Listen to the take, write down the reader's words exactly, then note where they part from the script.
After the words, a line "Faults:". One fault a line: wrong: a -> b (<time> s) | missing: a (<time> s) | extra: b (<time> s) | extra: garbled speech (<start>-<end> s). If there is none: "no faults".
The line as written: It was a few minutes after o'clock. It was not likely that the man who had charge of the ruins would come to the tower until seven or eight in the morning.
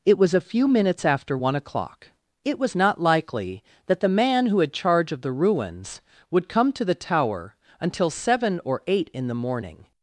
It was a few minutes after one o'clock. It was not likely that the man who had charge of the ruins would come to the tower until seven or eight in the morning.
Faults:
extra: one (1.3 s)